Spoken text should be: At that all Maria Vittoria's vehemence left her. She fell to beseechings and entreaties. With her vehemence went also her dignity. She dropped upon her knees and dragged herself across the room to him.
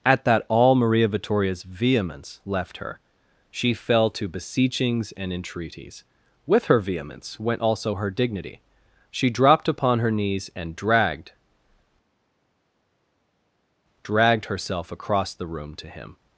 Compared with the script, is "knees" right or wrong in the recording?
right